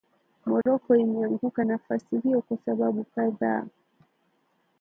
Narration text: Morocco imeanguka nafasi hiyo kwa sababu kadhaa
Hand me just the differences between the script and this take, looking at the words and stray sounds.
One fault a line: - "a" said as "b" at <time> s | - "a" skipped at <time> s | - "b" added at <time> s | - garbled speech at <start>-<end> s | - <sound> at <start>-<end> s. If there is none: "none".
- dropout at 0.6-0.7 s